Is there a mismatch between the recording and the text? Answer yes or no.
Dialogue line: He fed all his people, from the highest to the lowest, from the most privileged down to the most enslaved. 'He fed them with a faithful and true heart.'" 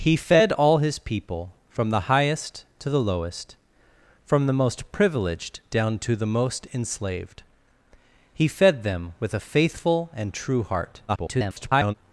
yes